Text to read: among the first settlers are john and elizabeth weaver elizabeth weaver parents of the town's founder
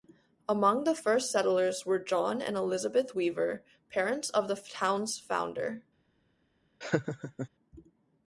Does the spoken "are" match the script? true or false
false